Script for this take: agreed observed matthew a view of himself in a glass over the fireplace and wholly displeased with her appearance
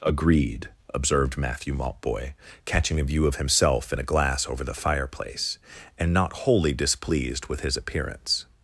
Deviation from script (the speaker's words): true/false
true